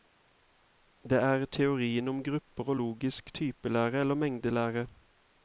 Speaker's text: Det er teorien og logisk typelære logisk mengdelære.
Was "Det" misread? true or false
false